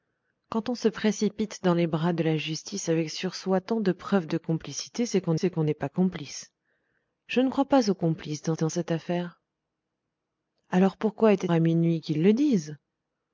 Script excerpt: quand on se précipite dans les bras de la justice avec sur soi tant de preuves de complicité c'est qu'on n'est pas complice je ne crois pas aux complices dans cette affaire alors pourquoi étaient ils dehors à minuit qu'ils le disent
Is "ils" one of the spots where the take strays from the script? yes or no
yes